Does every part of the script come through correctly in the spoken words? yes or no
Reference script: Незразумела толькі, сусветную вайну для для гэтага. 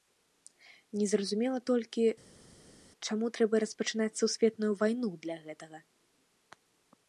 no